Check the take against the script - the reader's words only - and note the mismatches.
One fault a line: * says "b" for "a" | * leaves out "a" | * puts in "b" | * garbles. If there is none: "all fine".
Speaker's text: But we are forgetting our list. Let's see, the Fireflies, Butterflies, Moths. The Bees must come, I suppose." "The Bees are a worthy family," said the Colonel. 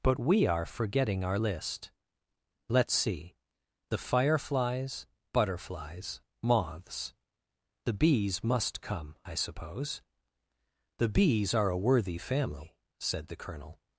all fine